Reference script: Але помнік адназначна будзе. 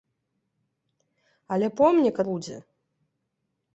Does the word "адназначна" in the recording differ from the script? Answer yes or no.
yes